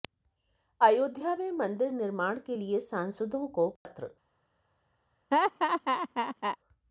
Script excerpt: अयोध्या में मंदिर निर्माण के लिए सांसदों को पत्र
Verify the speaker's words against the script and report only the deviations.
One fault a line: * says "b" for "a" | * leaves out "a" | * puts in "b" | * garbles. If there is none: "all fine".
all fine